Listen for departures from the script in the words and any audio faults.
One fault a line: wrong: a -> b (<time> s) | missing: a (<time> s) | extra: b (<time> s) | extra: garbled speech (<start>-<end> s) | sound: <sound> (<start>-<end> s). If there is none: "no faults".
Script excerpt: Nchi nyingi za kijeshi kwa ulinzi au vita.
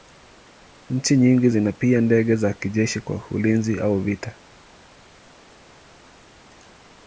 extra: zina pia ndege (1.5 s)